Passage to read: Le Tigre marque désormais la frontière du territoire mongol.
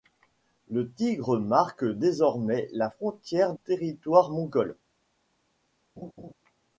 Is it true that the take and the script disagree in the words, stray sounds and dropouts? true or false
true